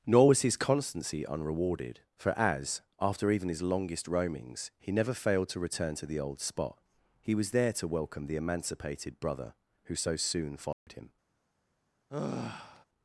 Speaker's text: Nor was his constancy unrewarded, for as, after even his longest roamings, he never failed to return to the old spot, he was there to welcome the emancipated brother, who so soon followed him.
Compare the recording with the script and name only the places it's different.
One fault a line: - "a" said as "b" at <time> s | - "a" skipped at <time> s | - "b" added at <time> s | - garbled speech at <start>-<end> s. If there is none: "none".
none